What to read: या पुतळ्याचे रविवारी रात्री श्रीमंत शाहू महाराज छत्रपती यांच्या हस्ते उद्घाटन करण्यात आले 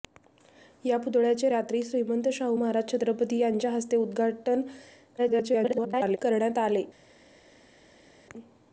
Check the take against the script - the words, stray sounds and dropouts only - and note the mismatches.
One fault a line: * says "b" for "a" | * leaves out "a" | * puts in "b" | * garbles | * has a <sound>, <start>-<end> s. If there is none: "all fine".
* leaves out "रविवारी"
* garbles